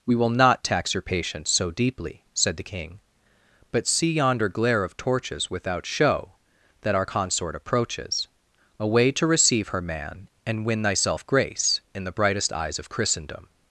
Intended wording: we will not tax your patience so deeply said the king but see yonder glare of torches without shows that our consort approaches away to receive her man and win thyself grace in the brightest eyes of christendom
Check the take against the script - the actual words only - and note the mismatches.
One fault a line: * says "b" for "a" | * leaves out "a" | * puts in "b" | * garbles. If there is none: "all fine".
* says "show" for "shows"